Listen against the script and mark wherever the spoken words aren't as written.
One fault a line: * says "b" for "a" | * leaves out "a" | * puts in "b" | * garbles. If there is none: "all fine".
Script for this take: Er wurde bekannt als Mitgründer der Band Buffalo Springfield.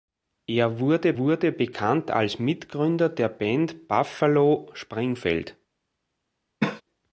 * puts in "wurde"